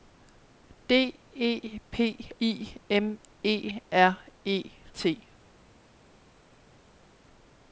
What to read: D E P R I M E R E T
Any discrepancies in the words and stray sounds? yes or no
yes